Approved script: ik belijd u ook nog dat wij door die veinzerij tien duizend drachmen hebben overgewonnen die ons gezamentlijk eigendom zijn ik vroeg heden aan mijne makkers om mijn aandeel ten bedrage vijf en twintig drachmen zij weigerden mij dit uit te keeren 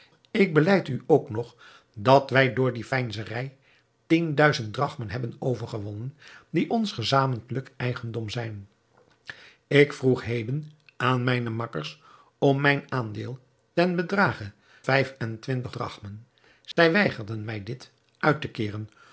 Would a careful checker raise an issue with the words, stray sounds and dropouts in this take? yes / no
yes